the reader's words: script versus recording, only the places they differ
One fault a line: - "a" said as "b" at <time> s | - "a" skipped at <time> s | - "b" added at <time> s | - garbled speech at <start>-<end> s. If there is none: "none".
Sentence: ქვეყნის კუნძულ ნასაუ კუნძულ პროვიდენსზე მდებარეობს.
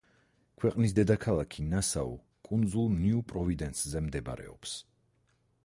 - "კუნძულ" said as "დედაქალაქი" at 1.0 s
- "ნიუ" added at 3.0 s